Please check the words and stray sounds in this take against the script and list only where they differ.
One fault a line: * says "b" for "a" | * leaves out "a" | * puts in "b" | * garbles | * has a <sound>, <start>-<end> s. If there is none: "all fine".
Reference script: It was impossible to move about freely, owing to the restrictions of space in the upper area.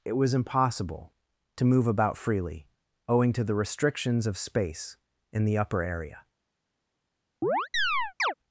* has a chirp, 7.4-8.3 s